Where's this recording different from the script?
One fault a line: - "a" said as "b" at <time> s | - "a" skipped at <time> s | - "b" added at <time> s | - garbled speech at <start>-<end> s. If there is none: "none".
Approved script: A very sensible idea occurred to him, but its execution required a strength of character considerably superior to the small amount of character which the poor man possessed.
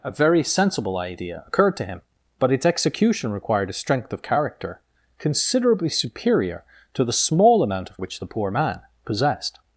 - "character" skipped at 8.0 s